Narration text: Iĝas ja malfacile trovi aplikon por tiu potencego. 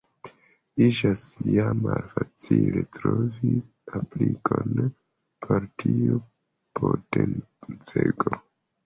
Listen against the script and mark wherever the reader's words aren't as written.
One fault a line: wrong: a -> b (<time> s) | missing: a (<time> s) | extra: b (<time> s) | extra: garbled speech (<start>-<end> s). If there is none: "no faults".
no faults